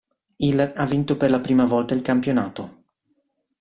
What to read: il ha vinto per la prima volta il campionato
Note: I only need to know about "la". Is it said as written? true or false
true